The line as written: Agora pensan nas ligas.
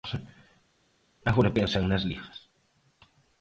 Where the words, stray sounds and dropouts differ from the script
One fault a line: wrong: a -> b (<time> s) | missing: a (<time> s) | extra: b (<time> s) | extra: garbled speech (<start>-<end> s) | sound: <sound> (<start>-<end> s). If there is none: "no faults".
no faults